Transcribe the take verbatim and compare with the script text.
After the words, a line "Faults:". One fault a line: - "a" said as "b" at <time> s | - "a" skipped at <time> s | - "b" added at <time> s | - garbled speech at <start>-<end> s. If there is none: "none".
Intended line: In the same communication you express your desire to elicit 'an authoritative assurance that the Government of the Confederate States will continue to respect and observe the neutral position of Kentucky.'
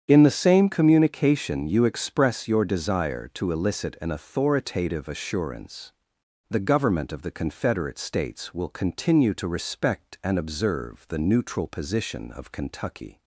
In the same communication you express your desire to elicit 'an authoritative assurance the Government of the Confederate States will continue to respect and observe the neutral position of Kentucky.'
Faults:
- "that" skipped at 5.9 s